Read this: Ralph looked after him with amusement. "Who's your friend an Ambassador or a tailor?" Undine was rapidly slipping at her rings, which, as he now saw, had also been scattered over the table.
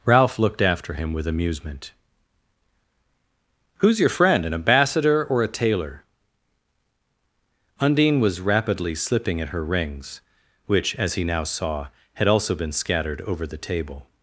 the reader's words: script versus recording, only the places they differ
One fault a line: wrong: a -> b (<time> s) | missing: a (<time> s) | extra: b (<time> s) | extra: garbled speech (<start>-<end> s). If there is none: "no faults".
no faults